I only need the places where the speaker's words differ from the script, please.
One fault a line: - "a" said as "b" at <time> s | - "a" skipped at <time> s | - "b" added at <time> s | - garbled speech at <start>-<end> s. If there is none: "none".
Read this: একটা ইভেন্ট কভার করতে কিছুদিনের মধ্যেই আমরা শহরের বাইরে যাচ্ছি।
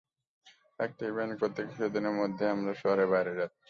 - "কভার" skipped at 1.3 s